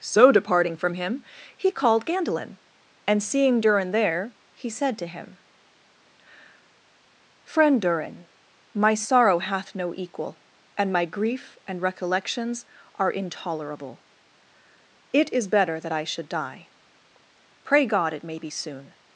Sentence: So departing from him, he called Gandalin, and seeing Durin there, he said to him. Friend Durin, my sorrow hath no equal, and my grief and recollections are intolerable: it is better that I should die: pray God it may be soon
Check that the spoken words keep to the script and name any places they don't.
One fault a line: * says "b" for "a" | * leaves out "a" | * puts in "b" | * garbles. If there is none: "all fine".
all fine